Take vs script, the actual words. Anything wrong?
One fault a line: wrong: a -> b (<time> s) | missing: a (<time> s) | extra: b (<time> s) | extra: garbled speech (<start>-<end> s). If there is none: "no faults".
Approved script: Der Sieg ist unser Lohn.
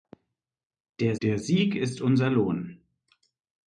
extra: der (1.2 s)